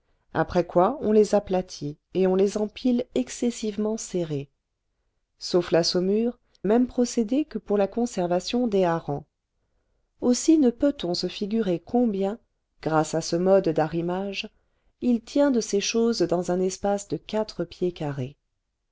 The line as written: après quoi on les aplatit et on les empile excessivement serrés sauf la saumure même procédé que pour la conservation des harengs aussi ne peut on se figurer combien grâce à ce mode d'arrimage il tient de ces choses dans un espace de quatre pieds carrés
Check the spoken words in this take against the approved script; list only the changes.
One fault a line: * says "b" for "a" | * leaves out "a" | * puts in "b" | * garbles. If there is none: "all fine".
all fine